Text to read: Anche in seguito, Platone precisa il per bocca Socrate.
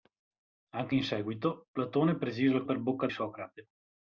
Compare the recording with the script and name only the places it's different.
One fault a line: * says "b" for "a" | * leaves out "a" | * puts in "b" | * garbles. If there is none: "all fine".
all fine